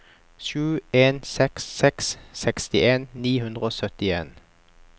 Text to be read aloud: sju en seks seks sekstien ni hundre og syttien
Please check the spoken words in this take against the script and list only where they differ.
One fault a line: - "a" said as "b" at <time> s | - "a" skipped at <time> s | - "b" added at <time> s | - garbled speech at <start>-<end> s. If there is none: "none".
none